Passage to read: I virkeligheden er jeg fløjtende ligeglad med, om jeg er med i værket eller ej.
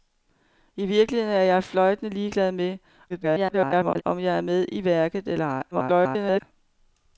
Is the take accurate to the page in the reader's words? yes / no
no